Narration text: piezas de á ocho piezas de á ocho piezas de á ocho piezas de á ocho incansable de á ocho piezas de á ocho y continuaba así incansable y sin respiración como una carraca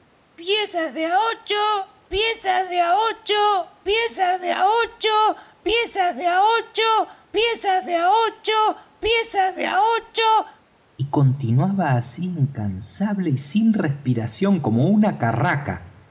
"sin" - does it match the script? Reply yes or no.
yes